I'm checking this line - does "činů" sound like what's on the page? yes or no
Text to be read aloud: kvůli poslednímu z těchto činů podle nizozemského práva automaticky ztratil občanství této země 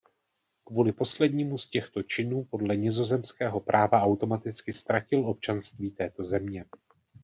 yes